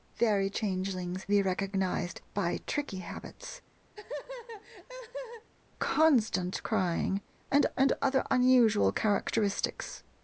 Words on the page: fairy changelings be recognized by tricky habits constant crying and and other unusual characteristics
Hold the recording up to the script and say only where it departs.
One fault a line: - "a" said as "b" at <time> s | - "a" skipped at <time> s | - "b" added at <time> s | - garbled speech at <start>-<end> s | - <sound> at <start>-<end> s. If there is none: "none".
- laugh at 3.9-5.5 s